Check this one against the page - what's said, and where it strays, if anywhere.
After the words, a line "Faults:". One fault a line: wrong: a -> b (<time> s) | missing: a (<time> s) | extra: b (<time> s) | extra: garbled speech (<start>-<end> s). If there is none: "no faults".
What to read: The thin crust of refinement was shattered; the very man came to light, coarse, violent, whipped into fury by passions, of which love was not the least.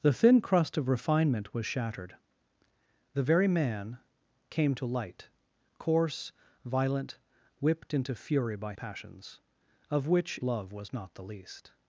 The thin crust of refinement was shattered; the very man came to light, coarse, violent, whipped into fury by passions, of which love was not the least.
Faults:
no faults